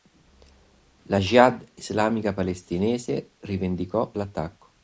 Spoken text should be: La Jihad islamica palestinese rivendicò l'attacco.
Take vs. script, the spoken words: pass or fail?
pass